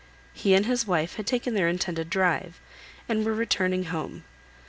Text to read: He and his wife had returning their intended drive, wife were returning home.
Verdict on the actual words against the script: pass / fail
fail